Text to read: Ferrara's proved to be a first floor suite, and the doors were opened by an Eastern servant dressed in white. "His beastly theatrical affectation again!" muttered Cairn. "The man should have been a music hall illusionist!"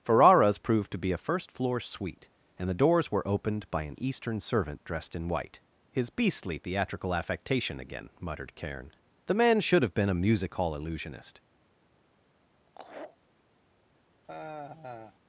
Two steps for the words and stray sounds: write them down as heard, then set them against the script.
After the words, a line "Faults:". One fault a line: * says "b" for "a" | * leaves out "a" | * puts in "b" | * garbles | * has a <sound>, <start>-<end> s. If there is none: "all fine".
Ferrara's proved to be a first floor suite, and the doors were opened by an Eastern servant dressed in white. "His beastly theatrical affectation again!" muttered Cairn. "The man should have been a music hall illusionist!"
Faults:
* has a laugh, 12.7-13.2 s
* has a sigh, 14.2-15.2 s